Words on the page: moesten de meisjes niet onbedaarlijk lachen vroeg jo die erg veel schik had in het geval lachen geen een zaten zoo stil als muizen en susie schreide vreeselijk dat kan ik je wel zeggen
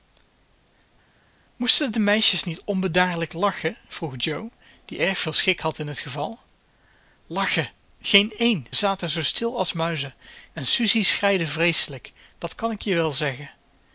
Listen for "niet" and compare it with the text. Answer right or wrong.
right